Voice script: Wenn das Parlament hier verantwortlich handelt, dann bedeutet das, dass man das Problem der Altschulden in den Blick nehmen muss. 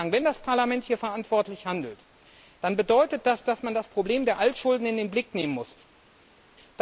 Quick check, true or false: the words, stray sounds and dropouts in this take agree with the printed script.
true